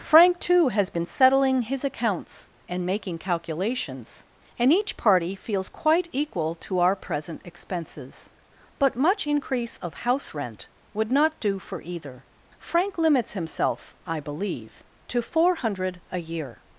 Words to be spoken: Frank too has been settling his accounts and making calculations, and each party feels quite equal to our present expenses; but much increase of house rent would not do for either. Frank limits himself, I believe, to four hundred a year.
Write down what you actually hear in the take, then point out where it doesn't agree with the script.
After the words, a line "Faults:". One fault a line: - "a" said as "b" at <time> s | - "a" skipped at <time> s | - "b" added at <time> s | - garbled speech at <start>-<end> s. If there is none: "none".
Frank too has been settling his accounts and making calculations, and each party feels quite equal to our present expenses; but much increase of house rent would not do for either. Frank limits himself, I believe, to four hundred a year.
Faults:
none